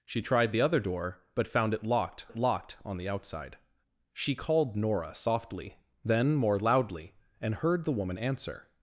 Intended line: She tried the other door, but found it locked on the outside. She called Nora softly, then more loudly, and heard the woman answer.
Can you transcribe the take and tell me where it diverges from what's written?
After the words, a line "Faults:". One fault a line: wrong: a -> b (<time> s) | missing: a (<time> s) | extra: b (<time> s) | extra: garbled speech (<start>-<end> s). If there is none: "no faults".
She tried the other door, but found it locked it locked on the outside. She called Nora softly, then more loudly, and heard the woman answer.
Faults:
extra: it locked (2.3 s)